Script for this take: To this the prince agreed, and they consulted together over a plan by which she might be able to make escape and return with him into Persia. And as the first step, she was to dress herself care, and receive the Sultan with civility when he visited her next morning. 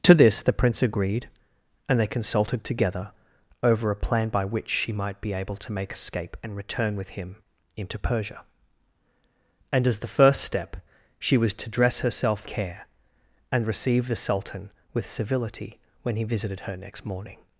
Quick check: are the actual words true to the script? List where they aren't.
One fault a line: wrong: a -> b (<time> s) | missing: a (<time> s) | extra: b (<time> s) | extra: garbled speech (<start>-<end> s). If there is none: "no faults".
no faults